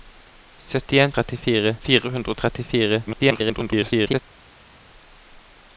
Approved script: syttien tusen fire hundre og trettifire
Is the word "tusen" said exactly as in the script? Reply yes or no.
no